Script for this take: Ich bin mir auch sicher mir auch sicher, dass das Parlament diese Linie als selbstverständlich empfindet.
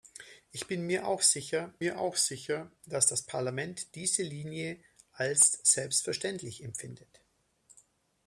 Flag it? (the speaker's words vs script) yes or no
no